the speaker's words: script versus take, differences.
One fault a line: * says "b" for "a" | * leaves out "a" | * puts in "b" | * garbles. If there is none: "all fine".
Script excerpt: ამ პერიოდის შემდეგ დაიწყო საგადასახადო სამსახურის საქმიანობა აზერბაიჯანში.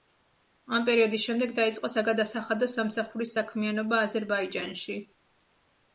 all fine